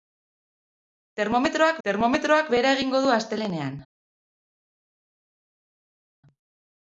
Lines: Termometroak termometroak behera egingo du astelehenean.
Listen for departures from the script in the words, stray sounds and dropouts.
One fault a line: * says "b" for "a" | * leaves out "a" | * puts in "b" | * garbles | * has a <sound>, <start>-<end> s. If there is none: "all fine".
all fine